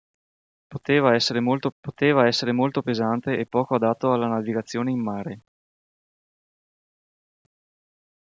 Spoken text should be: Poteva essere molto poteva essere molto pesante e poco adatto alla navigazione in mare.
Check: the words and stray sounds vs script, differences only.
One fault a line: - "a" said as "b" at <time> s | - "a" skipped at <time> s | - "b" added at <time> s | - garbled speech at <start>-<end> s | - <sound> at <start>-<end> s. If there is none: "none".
none